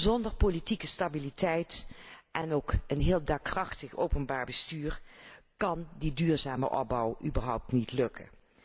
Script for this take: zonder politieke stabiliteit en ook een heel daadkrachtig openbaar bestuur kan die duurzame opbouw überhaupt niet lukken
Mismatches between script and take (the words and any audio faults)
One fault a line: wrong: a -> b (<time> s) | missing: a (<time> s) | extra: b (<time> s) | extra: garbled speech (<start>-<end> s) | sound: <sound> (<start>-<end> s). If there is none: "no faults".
no faults